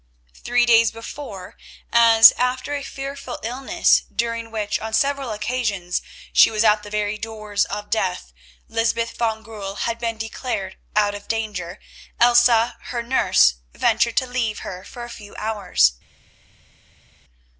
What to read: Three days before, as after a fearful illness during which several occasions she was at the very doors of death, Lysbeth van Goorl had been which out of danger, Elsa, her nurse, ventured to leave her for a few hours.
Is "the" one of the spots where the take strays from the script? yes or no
no